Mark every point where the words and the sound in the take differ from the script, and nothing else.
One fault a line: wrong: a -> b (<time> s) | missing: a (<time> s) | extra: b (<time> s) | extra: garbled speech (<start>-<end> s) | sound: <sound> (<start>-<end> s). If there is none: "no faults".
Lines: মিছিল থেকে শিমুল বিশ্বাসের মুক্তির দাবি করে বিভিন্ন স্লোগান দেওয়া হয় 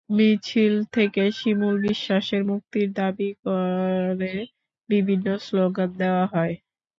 no faults